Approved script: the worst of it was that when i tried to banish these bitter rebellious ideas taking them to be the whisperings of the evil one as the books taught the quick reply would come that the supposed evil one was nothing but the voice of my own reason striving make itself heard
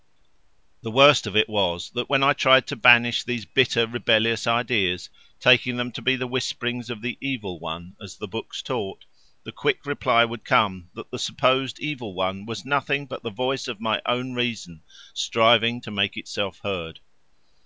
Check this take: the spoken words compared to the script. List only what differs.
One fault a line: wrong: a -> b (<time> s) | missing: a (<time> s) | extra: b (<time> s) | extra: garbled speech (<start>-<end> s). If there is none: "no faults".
extra: to (15.8 s)